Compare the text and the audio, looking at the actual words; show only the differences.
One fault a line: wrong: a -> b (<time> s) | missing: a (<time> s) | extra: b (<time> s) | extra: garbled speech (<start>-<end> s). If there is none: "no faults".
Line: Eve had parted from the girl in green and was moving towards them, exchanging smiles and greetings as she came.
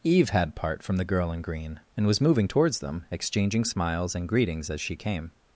wrong: parted -> part (0.6 s)